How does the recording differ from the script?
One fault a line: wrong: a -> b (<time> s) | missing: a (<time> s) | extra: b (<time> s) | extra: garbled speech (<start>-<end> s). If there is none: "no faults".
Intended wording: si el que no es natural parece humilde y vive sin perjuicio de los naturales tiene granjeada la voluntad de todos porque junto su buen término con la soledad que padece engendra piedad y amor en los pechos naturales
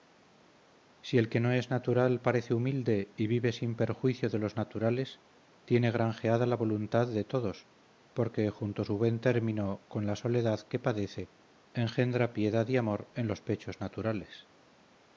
no faults